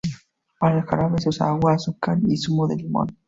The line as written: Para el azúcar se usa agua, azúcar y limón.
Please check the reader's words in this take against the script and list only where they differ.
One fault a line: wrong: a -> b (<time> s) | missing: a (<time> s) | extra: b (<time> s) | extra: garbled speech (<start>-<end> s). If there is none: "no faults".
wrong: azúcar -> jarabe (0.8 s)
extra: zumo de (2.4 s)